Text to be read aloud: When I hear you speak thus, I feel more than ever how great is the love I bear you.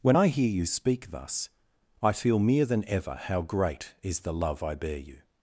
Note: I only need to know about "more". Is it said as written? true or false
false